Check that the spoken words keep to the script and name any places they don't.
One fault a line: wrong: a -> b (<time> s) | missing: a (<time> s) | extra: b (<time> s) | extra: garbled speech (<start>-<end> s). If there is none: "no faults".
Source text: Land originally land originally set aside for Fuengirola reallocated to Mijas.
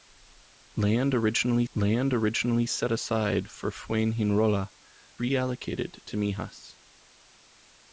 no faults